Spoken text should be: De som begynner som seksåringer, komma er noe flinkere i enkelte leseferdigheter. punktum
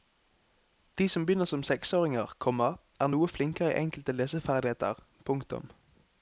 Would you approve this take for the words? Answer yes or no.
yes